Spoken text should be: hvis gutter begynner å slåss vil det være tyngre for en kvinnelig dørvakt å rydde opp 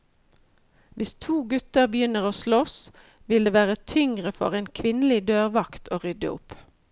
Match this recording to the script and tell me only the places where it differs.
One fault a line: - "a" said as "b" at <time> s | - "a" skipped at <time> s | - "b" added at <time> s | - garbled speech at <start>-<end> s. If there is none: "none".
- "to" added at 1.2 s